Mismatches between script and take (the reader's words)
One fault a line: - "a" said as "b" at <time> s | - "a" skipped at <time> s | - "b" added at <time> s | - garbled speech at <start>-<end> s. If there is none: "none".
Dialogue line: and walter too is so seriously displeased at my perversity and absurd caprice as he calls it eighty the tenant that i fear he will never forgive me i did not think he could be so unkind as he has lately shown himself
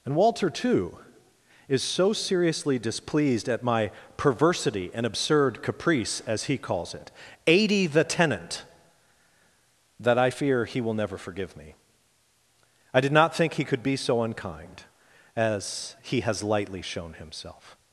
- "lately" said as "lightly" at 16.4 s